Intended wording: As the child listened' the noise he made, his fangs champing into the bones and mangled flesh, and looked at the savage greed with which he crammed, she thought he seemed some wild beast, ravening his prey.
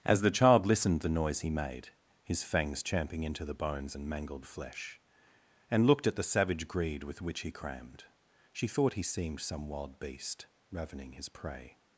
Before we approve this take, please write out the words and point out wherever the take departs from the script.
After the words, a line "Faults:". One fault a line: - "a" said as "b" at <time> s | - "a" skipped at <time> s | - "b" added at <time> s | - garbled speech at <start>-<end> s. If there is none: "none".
As the child listened' the noise he made, his fangs champing into the bones and mangled flesh, and looked at the savage greed with which he crammed, she thought he seemed some wild beast, ravening his prey.
Faults:
none